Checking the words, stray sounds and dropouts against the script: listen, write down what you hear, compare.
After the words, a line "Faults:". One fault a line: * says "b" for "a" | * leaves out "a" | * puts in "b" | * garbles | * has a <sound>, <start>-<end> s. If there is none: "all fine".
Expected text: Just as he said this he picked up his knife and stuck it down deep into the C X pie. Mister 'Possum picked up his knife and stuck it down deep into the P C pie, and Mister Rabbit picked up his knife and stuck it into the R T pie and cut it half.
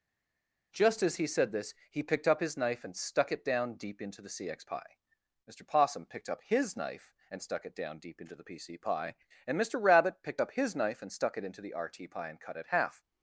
Just as he said this he picked up his knife and stuck it down deep into the C X pie. Mister 'Possum picked up his knife and stuck it down deep into the P C pie, and Mister Rabbit picked up his knife and stuck it into the R T pie and cut it half.
Faults:
all fine